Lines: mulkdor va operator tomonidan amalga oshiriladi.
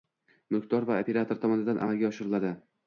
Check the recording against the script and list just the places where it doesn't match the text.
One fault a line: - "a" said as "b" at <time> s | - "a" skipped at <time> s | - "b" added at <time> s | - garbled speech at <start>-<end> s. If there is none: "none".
none